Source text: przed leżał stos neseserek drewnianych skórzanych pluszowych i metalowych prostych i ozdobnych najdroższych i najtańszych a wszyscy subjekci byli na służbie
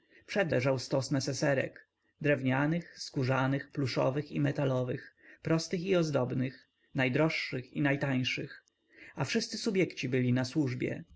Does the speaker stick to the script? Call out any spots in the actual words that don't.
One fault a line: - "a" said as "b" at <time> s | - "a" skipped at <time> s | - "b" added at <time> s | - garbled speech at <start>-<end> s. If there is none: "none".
none